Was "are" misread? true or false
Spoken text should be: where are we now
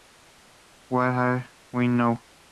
false